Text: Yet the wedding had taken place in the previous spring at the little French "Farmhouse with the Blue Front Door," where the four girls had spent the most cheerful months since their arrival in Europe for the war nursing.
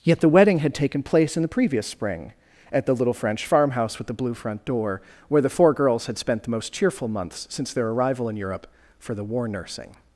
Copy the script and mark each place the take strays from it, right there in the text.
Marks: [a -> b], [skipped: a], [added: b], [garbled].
Yet the wedding had taken place in the previous spring at the little French "Farmhouse with the Blue Front Door," where the four girls had spent the most cheerful months since their arrival in Europe for the war nursing.